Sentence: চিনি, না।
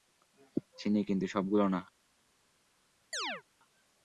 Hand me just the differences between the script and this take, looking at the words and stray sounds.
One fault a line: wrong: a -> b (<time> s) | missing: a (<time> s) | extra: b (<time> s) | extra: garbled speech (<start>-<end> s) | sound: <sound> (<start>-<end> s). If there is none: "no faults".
extra: কিন্তু সবগুলো (1.0 s)
sound: chirp (3.1-3.4 s)